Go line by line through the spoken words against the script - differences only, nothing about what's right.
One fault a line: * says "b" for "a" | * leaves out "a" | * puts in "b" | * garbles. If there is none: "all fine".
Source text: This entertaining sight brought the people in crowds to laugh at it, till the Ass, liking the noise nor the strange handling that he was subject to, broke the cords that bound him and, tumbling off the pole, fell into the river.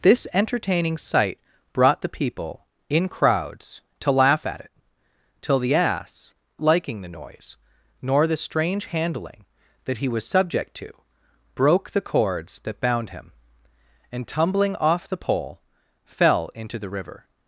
all fine